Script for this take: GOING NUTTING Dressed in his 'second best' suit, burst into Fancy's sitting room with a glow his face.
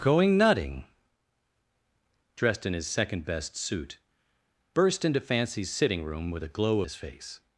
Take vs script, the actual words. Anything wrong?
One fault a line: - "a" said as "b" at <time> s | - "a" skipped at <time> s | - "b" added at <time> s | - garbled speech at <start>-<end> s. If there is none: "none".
none